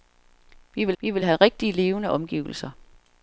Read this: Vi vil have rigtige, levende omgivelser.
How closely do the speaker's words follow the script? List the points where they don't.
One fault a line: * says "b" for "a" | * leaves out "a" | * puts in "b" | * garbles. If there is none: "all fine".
* puts in "vi vil"